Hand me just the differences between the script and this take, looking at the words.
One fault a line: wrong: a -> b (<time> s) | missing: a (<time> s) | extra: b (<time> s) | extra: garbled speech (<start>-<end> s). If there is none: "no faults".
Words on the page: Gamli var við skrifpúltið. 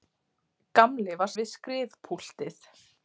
no faults